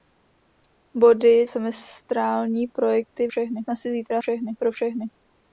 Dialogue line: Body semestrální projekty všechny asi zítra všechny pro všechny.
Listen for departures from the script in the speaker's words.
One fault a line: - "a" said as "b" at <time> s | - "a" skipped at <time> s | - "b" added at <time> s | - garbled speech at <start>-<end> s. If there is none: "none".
none